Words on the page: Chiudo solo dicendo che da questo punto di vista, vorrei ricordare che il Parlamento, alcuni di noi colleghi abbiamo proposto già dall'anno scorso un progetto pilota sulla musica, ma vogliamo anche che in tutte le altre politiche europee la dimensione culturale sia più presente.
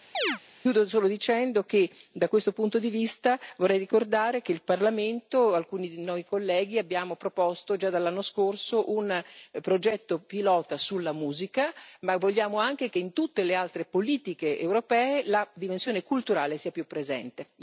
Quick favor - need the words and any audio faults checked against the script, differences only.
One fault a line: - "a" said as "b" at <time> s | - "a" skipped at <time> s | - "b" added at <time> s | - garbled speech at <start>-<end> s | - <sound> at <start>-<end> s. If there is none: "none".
- chirp at 0.1-0.4 s